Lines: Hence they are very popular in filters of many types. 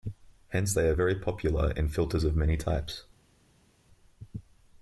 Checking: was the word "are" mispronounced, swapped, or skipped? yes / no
no